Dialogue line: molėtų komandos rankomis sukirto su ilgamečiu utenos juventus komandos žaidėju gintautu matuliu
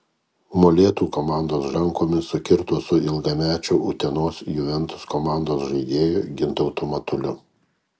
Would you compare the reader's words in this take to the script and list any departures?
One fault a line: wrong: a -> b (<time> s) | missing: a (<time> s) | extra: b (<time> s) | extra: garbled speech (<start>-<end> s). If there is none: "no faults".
no faults